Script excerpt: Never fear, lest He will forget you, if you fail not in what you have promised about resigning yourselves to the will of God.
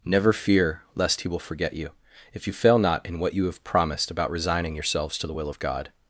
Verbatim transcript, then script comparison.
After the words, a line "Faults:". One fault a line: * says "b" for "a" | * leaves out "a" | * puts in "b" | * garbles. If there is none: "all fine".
Never fear, lest He will forget you, if you fail not in what you have promised about resigning yourselves to the will of God.
Faults:
all fine